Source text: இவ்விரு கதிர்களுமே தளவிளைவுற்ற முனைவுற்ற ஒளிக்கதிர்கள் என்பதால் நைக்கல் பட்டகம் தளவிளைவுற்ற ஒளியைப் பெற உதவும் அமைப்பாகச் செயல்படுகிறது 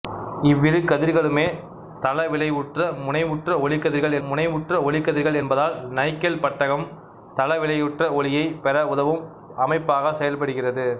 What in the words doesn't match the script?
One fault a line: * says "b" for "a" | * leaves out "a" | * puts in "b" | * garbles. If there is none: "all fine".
* puts in "முனைவுற்ற ஒளிக்கதிர்கள்"